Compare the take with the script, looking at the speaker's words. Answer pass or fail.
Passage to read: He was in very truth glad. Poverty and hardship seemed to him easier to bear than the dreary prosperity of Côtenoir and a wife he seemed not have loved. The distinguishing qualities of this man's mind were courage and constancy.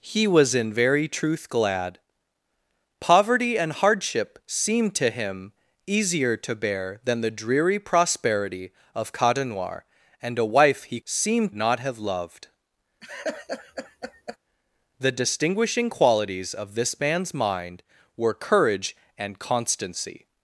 pass